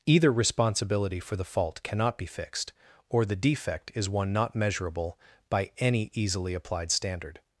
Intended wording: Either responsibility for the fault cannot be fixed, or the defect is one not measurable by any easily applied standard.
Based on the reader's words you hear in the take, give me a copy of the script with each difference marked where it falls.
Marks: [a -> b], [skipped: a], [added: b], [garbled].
Either responsibility for the fault cannot be fixed, or the defect is one not measurable by any easily applied standard.